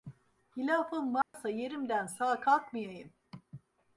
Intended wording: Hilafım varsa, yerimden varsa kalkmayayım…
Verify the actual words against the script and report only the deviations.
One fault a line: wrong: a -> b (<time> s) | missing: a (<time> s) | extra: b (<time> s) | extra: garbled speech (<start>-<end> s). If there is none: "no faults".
wrong: varsa -> sağ (2.1 s)